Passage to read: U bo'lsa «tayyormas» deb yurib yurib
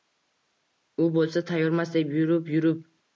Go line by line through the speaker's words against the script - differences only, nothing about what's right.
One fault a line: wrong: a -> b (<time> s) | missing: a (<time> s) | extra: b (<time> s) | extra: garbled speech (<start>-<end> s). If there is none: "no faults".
no faults